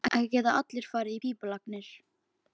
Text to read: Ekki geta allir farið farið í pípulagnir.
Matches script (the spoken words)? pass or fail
fail